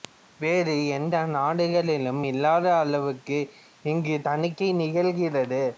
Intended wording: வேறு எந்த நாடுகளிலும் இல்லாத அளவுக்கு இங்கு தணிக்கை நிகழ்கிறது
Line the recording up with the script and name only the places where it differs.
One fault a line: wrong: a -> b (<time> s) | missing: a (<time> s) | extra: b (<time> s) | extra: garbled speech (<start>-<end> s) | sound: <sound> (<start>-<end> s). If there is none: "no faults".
no faults